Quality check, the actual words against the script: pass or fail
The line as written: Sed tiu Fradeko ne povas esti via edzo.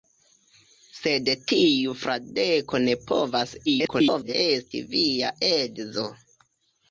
fail